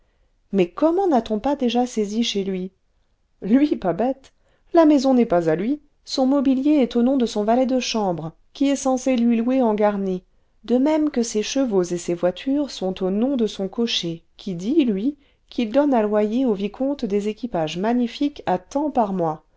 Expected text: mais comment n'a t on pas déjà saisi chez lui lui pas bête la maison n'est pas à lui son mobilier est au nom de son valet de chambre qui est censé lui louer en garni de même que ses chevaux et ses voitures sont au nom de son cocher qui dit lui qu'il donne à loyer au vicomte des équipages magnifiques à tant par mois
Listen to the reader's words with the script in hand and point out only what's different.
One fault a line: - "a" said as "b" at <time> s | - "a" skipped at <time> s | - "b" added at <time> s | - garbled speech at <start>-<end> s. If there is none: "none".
none